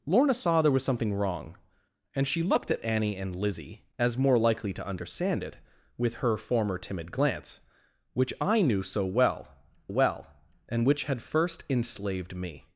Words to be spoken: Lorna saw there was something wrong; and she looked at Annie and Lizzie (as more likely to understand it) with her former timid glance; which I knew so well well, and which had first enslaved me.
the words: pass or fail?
pass